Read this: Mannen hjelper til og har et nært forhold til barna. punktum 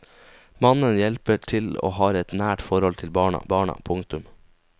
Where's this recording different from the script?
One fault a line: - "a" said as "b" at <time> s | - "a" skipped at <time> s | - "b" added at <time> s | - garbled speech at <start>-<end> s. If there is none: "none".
- "barna" added at 3.5 s